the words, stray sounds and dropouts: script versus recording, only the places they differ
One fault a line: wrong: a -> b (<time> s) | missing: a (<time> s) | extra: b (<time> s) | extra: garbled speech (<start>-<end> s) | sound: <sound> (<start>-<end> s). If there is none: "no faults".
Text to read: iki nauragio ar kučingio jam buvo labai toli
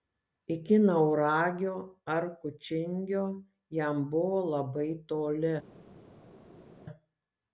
no faults